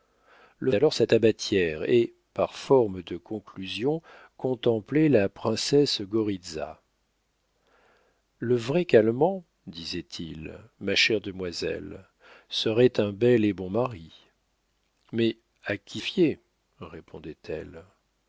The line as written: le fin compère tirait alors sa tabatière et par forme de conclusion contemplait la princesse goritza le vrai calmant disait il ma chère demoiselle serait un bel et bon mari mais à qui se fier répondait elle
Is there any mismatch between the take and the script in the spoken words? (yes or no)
yes